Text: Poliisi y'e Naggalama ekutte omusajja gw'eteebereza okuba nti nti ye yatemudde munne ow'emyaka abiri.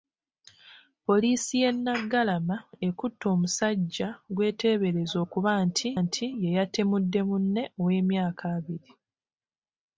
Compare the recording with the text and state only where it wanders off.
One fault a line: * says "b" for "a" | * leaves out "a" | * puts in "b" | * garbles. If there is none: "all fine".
all fine